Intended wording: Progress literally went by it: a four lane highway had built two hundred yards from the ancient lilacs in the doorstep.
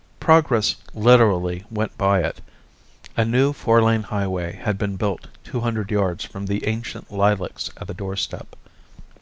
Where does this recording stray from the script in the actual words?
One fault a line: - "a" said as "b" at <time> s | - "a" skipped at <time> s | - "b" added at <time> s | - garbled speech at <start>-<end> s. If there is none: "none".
- "new" added at 3.2 s
- "been" added at 4.8 s
- "in" said as "at" at 7.8 s